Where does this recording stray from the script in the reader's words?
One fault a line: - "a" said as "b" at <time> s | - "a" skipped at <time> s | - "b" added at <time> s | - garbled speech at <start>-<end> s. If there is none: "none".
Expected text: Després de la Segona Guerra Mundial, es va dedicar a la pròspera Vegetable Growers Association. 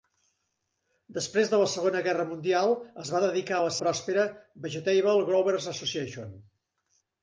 none